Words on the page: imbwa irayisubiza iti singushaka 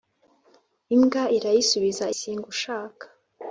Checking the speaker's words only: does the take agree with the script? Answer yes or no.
no